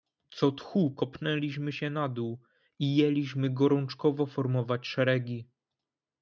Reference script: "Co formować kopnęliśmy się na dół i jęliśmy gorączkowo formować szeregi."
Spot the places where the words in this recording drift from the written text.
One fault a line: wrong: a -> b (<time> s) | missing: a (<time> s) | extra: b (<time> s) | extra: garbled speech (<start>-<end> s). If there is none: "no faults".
wrong: formować -> tchu (0.5 s)